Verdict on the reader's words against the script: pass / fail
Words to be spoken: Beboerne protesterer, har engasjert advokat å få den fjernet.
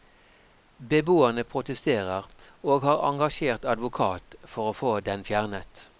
fail